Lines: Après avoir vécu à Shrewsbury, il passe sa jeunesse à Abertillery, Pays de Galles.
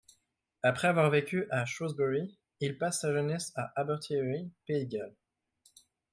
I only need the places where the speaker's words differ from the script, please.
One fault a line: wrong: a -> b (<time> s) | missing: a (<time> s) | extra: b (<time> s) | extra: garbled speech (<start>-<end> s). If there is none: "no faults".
no faults